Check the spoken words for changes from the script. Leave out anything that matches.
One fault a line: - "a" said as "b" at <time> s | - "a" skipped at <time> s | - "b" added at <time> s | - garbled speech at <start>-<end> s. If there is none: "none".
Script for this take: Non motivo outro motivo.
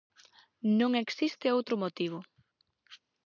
- "motivo" said as "existe" at 1.0 s